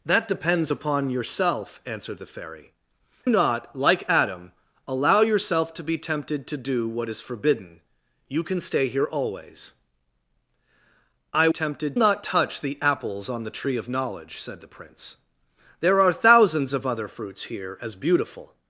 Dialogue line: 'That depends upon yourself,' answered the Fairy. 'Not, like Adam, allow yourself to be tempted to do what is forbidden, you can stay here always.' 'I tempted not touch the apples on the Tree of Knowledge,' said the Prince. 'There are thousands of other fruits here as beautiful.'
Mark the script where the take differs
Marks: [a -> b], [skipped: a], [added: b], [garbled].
'That depends upon yourself,' answered the Fairy. 'Not, like Adam, allow yourself to be tempted to do what is forbidden, you can stay here always.' 'I tempted not touch the apples on the Tree of Knowledge,' said the Prince. 'There are thousands of other fruits here as beautiful.'